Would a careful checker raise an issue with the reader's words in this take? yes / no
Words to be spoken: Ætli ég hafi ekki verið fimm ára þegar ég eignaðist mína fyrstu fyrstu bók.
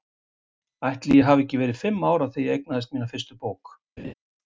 yes